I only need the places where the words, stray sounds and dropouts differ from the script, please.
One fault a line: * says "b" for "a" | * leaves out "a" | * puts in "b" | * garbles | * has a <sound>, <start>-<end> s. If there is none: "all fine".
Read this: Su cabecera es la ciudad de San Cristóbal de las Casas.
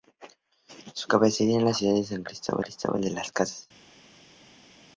* puts in "Cristóbal"